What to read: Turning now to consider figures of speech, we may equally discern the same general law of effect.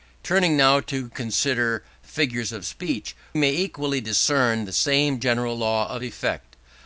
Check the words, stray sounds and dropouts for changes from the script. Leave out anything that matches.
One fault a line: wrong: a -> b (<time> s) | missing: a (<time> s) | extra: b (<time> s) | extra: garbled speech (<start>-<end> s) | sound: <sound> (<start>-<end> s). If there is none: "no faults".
missing: we (3.1 s)